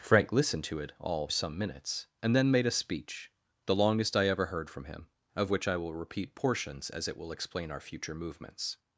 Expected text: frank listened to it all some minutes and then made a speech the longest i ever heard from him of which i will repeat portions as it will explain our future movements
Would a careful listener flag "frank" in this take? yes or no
no